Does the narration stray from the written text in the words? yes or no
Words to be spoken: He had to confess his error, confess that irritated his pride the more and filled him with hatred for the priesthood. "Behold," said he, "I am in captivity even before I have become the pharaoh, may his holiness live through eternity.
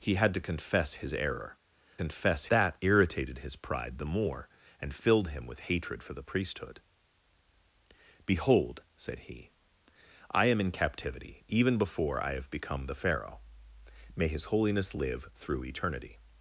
no